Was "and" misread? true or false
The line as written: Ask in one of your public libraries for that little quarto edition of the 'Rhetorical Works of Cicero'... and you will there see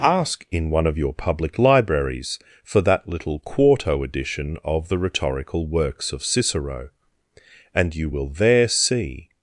false